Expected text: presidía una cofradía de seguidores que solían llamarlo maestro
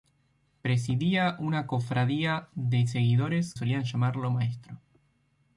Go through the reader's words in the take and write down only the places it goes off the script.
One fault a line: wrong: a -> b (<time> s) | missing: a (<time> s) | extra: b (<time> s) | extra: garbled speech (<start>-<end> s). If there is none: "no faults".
missing: que (3.5 s)